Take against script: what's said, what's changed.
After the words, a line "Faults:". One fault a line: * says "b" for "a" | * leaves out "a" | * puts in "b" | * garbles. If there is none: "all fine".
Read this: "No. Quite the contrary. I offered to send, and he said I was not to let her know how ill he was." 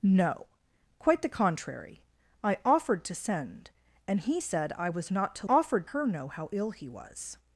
"No. Quite the contrary. I offered to send, and he said I was not to offered her know how ill he was."
Faults:
* says "offered" for "let"